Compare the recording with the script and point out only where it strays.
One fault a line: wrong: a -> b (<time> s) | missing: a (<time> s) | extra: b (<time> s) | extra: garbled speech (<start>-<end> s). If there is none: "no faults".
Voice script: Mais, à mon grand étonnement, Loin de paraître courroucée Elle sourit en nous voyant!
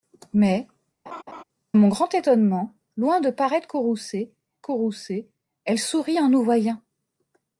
missing: à (0.7 s)
extra: courroucée (4.6 s)